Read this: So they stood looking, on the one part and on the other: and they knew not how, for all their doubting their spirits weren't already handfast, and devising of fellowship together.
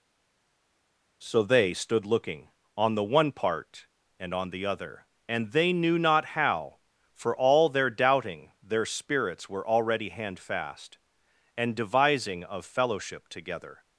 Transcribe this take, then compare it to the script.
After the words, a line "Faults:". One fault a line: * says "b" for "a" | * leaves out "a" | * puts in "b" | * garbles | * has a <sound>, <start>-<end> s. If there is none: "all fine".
So they stood looking, on the one part and on the other: and they knew not how, for all their doubting their spirits were already handfast, and devising of fellowship together.
Faults:
* says "were" for "weren't"